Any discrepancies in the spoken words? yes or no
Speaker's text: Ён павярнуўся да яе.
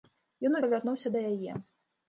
no